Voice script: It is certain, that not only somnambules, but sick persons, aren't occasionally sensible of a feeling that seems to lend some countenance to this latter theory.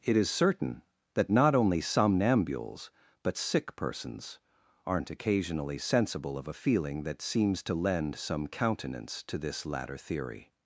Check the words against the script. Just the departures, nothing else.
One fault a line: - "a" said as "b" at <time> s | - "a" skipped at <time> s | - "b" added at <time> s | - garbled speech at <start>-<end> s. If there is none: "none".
none